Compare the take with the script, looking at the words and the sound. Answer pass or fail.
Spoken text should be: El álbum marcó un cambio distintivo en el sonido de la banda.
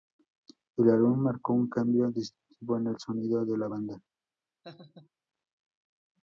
fail